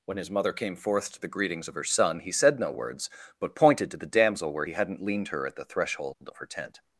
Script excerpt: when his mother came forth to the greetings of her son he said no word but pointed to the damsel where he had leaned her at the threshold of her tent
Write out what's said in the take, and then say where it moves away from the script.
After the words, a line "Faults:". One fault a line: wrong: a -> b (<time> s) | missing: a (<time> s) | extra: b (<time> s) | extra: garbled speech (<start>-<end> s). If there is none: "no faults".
when his mother came forth to the greetings of her son he said no words but pointed to the damsel where he hadn't leaned her at the threshold of her tent
Faults:
wrong: word -> words (2.7 s)
wrong: had -> hadn't (4.7 s)